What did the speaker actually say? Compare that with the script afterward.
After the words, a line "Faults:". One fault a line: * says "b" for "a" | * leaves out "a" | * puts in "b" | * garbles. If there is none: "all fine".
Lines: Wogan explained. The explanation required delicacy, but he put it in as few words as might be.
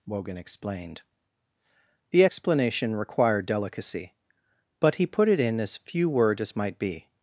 Wogan explained. The explanation required delicacy, but he put it in as few word as might be.
Faults:
* says "word" for "words"